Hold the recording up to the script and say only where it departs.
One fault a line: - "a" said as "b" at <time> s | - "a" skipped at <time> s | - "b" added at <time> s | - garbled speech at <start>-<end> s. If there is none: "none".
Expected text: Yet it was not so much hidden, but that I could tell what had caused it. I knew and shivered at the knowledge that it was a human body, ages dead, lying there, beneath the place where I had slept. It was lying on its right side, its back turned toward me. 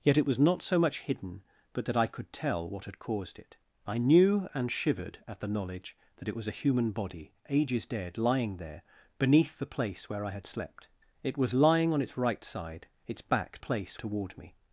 - "turned" said as "place" at 13.6 s